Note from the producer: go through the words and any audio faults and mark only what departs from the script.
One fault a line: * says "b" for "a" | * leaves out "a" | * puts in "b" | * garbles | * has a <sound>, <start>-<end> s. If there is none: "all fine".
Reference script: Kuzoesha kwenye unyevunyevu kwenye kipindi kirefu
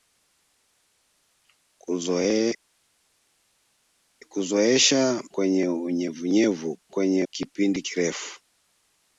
all fine